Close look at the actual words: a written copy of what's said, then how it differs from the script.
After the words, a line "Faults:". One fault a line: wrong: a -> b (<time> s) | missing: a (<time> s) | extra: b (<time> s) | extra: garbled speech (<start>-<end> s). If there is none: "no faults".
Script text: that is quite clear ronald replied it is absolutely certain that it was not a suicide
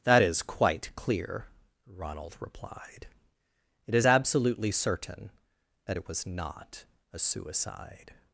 that is quite clear ronald replied it is absolutely certain that it was not a suicide
Faults:
no faults